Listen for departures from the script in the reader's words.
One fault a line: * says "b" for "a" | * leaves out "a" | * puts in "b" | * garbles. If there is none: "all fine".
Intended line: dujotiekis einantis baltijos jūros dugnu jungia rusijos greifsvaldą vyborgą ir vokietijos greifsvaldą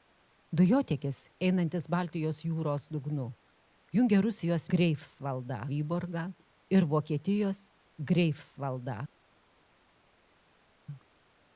all fine